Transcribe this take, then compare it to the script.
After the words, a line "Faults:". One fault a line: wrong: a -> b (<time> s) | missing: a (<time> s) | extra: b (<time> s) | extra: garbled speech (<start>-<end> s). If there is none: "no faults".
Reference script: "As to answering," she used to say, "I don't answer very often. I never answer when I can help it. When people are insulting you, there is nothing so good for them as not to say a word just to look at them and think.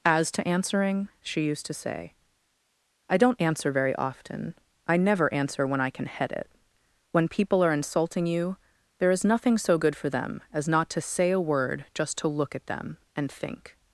"As to answering," she used to say, "I don't answer very often. I never answer when I can head it. When people are insulting you, there is nothing so good for them as not to say a word just to look at them and think.
Faults:
wrong: help -> head (6.1 s)